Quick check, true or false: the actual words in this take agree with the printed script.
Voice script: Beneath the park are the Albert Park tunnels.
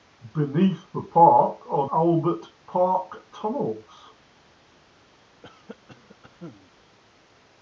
false